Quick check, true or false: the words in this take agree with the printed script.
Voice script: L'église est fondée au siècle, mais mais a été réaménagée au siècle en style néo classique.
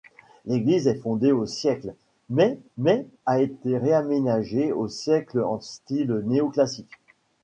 true